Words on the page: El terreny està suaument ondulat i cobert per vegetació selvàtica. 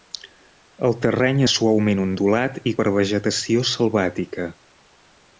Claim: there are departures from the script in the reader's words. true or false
true